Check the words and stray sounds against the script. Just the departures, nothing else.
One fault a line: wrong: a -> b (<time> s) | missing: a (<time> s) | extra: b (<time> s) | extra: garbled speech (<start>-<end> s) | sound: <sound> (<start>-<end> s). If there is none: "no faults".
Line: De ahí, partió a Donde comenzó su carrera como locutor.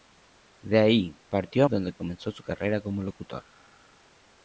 no faults